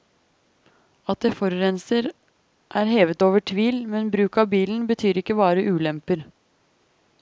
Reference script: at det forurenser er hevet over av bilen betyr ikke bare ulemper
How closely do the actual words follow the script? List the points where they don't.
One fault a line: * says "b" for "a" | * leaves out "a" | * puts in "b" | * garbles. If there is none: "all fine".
* puts in "tvil men bruk"